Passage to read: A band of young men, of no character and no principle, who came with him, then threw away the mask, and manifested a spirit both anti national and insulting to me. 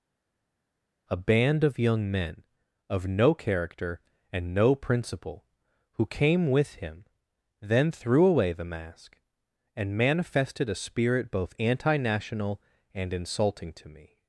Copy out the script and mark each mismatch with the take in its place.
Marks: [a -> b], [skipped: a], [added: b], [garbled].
A band of young men, of no character and no principle, who came with him, then threw away the mask, and manifested a spirit both anti national and insulting to me.